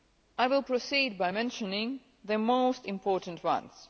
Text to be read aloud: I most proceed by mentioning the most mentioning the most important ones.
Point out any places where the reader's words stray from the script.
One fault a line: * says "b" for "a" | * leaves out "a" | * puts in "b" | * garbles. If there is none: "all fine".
* says "will" for "most"
* leaves out "mentioning the most"